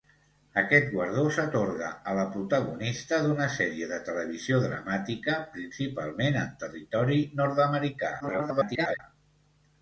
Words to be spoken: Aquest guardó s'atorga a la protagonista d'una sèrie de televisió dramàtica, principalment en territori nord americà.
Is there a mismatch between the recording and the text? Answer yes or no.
yes